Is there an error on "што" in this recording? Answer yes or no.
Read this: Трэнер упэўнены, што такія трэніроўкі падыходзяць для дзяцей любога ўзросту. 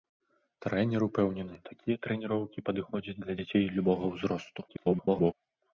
yes